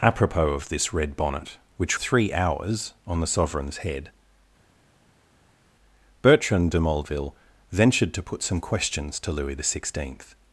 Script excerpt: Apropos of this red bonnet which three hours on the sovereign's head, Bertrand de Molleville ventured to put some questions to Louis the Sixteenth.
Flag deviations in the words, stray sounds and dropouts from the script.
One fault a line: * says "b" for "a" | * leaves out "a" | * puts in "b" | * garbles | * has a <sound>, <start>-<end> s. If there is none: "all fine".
all fine